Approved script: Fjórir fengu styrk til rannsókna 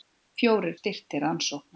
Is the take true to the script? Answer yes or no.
no